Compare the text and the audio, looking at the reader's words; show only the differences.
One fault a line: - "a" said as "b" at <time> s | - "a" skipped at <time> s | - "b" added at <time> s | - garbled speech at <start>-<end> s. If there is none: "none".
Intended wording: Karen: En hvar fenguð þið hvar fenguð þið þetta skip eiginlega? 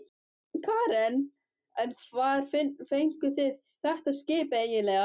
- "hvar fenguð þið" skipped at 3.6 s